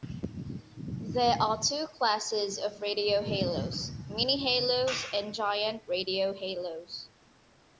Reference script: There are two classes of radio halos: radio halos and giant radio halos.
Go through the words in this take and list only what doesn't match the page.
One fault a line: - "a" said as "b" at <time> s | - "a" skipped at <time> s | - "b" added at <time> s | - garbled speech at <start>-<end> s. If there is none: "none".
- "radio" said as "mini" at 4.1 s